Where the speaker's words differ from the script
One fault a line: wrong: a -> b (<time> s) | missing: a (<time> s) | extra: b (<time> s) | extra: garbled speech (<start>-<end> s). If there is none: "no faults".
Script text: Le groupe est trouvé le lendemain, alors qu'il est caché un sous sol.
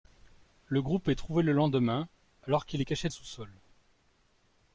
no faults